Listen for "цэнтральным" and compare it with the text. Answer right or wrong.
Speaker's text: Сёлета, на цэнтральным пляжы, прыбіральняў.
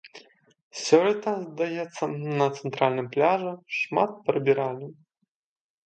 right